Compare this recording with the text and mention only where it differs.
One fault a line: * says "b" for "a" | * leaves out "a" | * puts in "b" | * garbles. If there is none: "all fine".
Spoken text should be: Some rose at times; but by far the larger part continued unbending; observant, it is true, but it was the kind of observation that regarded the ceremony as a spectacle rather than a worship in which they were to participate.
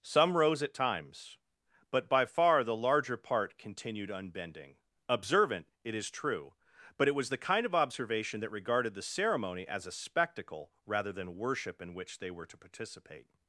* leaves out "a"